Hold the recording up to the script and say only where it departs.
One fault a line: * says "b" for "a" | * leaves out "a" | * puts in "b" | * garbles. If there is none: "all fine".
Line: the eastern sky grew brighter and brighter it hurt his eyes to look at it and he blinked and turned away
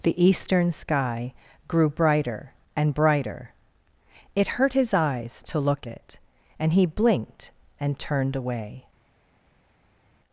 * leaves out "at"